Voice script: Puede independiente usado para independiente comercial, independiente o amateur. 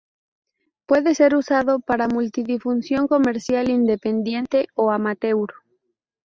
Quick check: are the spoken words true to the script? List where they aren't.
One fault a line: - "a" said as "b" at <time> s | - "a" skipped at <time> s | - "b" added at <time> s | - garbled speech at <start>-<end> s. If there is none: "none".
- "independiente" said as "ser" at 1.1 s
- "independiente" said as "multidifusión" at 2.1 s